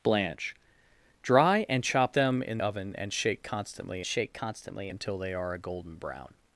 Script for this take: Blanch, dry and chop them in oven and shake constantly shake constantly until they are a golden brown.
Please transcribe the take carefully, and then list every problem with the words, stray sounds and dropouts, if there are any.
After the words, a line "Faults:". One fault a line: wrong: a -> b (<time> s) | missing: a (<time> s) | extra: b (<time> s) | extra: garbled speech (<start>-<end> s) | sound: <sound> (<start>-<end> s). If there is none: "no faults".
Blanch, dry and chop them in oven and shake constantly shake constantly until they are a golden brown.
Faults:
no faults